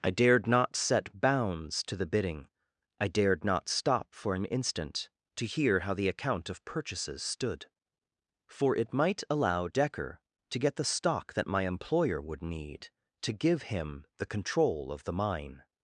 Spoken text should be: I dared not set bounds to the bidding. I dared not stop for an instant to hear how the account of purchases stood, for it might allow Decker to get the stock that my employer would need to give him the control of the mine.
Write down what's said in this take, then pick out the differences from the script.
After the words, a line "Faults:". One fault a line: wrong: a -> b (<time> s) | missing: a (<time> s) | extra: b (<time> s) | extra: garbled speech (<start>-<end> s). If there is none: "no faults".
I dared not set bounds to the bidding. I dared not stop for an instant to hear how the account of purchases stood, for it might allow Decker to get the stock that my employer would need to give him the control of the mine.
Faults:
no faults